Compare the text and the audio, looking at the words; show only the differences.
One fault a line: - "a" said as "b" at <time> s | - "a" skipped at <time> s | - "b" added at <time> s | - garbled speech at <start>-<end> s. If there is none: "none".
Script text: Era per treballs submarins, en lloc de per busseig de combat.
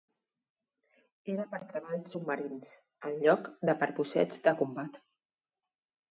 none